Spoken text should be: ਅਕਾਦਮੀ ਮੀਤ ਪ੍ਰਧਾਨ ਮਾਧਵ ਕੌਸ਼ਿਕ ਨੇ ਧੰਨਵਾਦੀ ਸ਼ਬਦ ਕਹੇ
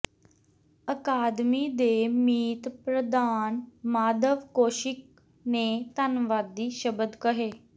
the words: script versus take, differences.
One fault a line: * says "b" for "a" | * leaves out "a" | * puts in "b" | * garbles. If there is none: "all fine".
* puts in "ਦੇ"